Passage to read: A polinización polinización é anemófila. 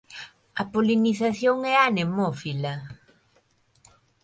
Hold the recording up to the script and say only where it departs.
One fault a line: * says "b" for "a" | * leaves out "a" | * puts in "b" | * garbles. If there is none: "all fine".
* leaves out "polinización"